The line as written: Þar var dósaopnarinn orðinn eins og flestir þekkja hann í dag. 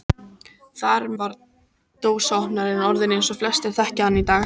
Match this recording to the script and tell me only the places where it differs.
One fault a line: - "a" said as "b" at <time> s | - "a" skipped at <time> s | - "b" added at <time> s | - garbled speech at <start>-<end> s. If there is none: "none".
none